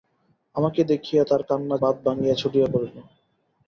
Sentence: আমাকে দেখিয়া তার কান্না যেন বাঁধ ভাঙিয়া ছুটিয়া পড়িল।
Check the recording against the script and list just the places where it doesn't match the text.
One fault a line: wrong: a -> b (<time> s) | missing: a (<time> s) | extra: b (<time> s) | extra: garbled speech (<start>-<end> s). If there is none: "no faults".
missing: যেন (1.7 s)